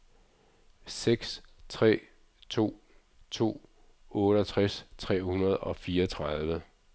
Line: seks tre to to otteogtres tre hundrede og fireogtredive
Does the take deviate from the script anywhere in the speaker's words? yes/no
no